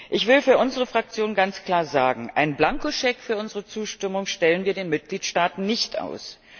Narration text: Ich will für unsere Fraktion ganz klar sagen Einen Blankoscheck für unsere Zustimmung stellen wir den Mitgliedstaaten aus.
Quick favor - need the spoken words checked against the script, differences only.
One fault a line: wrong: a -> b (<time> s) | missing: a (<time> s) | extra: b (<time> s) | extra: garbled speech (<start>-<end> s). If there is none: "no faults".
extra: nicht (5.6 s)